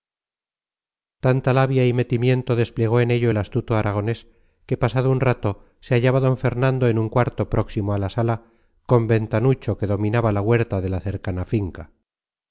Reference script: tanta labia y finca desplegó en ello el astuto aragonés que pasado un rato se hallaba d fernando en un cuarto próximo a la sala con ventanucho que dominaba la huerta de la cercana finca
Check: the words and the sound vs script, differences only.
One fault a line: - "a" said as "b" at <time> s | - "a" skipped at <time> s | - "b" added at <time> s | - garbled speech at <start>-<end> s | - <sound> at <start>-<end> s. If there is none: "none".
- "finca" said as "metimiento" at 1.9 s